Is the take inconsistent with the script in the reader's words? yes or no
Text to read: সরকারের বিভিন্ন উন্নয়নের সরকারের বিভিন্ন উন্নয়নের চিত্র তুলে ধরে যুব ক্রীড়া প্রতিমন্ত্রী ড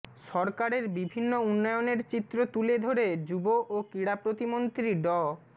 yes